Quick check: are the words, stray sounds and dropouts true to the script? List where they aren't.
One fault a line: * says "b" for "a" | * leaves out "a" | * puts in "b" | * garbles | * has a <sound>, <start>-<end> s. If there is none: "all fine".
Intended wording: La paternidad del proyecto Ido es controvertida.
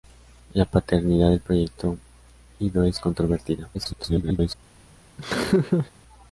* garbles
* has a laugh, 5.2-5.9 s